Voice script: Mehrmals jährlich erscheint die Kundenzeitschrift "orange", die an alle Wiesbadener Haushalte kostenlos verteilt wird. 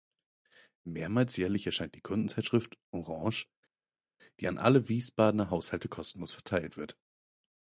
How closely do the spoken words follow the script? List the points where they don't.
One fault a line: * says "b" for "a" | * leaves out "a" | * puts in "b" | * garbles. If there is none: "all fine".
all fine